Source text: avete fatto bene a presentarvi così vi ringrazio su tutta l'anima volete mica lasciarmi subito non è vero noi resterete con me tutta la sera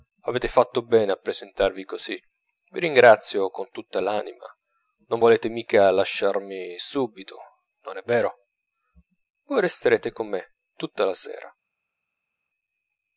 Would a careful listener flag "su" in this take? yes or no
yes